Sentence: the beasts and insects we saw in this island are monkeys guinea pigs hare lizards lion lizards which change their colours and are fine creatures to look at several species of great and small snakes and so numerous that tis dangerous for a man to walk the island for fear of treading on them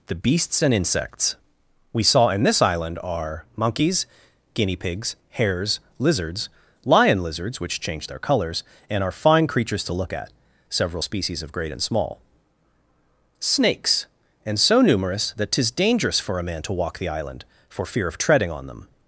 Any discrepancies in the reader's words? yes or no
yes